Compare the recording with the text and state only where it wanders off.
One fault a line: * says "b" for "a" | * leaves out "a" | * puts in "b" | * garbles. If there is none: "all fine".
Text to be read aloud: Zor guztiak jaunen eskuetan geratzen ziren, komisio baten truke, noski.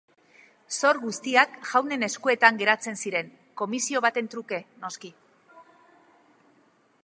all fine